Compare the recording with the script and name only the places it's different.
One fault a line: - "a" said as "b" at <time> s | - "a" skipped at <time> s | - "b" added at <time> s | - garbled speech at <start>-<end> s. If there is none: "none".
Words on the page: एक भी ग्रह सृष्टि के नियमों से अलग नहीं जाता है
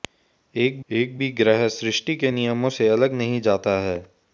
- "एक" added at 0.9 s